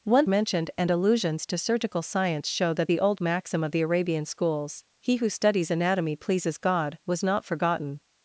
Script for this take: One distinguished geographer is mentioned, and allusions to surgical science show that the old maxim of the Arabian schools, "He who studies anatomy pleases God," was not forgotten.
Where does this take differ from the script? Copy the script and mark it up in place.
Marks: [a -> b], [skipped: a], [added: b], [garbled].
One [skipped: distinguished geographer is] mentioned, and allusions to surgical science show that the old maxim of the Arabian schools, "He who studies anatomy pleases God," was not forgotten.